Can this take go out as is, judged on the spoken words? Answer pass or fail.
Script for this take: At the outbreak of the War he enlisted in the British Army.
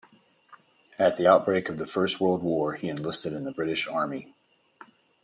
fail